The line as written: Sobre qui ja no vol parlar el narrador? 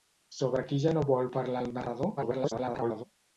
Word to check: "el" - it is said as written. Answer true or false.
true